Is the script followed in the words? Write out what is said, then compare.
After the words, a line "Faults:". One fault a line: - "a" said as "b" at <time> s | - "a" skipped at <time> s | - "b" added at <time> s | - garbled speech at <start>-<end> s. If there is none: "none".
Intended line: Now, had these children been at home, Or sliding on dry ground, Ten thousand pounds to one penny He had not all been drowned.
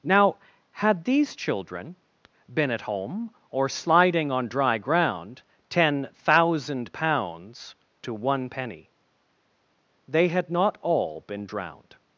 Now, had these children been at home, Or sliding on dry ground, Ten thousand pounds to one penny They had not all been drowned.
Faults:
- "He" said as "They" at 10.1 s